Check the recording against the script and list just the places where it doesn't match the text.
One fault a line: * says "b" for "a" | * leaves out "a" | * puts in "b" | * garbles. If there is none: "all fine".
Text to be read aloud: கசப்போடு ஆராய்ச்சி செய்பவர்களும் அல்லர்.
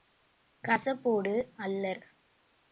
* leaves out "ஆராய்ச்சி செய்பவர்களும்"